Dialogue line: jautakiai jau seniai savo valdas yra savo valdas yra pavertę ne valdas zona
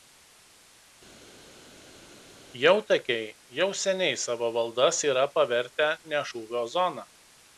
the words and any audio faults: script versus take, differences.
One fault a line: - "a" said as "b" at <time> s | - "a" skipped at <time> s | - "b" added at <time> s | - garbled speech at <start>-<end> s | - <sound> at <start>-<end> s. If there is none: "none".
- "savo valdas yra" skipped at 5.3 s
- "valdas" said as "šūvio" at 6.3 s